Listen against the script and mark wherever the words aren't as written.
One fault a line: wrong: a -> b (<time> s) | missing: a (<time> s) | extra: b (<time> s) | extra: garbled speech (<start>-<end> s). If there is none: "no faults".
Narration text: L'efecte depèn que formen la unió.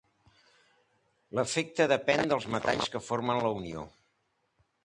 extra: dels metalls (2.3 s)